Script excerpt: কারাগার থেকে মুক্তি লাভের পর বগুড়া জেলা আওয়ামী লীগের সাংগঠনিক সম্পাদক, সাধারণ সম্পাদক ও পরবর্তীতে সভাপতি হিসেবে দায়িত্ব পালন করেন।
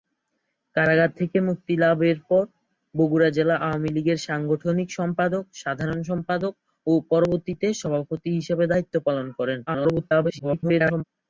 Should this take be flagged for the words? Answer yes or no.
yes